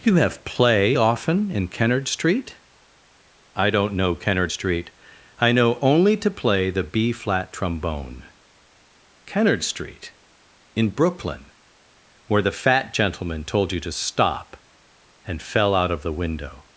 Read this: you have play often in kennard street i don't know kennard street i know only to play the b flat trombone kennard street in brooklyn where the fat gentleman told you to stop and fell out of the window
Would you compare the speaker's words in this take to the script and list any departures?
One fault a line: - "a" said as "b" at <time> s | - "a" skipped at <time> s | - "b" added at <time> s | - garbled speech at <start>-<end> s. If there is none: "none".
none